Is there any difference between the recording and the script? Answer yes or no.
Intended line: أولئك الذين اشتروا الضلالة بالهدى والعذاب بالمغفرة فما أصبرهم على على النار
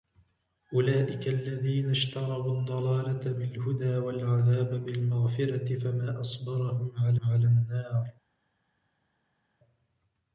no